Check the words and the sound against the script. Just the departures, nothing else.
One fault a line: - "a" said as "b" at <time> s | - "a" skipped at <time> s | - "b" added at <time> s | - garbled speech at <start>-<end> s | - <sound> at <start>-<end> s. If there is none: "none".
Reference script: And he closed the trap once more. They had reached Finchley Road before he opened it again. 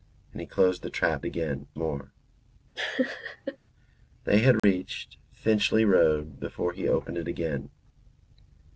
- "once" said as "again" at 1.2 s
- laugh at 2.8-3.6 s
- dropout at 4.6-4.6 s